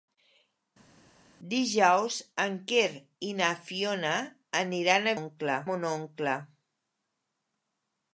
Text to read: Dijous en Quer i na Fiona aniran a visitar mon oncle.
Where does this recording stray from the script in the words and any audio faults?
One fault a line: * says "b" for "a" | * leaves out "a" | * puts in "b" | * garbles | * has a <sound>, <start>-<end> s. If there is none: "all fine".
* says "oncle" for "visitar"